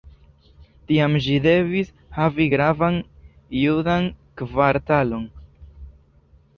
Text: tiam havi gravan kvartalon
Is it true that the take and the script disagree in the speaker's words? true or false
true